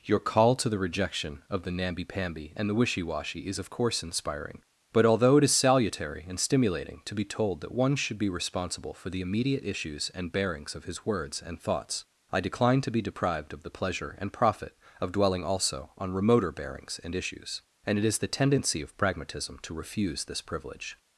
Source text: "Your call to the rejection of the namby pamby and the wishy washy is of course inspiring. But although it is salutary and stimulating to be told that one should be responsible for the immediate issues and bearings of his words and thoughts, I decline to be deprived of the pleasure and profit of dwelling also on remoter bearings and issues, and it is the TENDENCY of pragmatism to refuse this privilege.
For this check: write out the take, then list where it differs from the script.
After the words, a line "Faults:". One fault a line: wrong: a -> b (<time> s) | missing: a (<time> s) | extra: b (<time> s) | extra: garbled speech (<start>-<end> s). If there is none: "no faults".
"Your call to the rejection of the namby pamby and the wishy washy is of course inspiring. But although it is salutary and stimulating to be told that one should be responsible for the immediate issues and bearings of his words and thoughts, I decline to be deprived of the pleasure and profit of dwelling also on remoter bearings and issues, and it is the TENDENCY of pragmatism to refuse this privilege.
Faults:
no faults